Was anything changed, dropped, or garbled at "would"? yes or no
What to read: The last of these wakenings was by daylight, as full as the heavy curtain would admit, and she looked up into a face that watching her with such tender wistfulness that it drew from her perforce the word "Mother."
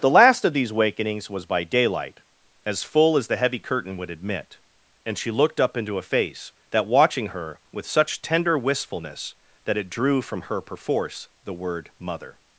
no